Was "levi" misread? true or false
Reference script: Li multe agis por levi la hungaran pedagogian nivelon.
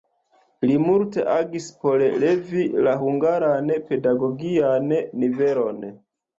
false